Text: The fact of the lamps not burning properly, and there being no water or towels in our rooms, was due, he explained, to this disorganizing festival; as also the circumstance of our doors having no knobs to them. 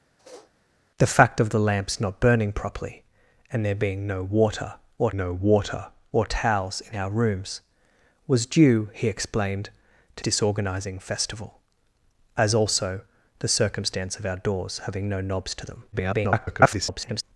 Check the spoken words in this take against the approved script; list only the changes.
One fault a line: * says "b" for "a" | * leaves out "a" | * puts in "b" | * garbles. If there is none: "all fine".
* puts in "no water or"
* leaves out "this"
* garbles